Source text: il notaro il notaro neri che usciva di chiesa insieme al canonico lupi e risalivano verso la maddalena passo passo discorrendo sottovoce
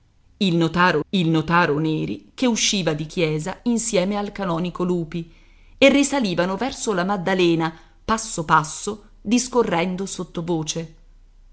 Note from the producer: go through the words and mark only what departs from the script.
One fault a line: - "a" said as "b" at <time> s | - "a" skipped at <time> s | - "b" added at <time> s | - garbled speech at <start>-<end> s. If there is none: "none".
none